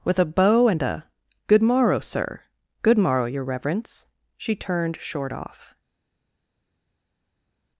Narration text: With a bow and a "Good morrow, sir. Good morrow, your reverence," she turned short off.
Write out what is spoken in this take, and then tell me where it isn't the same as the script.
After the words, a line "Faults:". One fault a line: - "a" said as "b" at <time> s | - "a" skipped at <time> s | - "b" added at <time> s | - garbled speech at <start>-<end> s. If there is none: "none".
With a bow and a "Good morrow, sir. Good morrow, your reverence," she turned short off.
Faults:
none